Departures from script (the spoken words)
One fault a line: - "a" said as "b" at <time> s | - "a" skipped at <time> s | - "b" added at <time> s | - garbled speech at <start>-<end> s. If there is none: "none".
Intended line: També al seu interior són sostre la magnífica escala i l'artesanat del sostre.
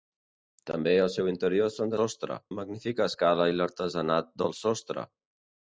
none